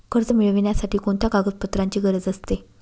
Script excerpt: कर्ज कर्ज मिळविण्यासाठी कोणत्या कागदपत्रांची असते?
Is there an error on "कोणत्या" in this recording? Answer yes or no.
no